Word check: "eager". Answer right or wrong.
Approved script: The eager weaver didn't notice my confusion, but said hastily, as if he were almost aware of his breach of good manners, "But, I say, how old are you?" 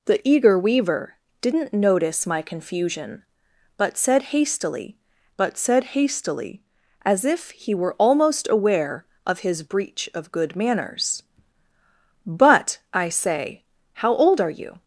right